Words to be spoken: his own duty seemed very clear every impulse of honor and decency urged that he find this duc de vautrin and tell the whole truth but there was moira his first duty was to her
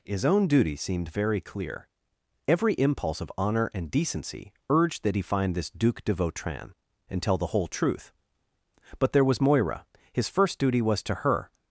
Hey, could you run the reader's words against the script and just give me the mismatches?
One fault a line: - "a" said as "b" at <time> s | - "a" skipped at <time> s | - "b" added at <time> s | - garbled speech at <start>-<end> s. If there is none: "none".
none